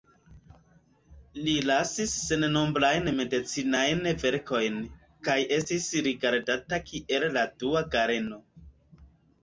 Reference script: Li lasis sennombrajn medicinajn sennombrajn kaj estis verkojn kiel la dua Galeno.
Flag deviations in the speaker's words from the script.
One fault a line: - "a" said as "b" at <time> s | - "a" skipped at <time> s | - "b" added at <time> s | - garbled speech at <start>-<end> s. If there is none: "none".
- "sennombrajn" said as "verkojn" at 4.3 s
- "verkojn" said as "rigardata" at 6.1 s